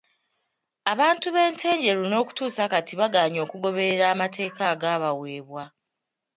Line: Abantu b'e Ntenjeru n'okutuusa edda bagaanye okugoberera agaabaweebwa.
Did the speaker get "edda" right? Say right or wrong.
wrong